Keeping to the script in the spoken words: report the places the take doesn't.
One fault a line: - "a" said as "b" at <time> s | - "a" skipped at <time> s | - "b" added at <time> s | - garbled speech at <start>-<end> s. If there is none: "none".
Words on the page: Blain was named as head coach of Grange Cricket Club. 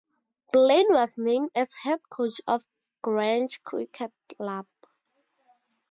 none